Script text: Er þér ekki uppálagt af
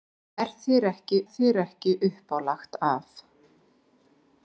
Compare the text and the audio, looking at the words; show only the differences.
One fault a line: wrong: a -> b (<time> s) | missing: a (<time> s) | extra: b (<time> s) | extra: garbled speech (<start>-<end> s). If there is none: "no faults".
extra: þér ekki (1.3 s)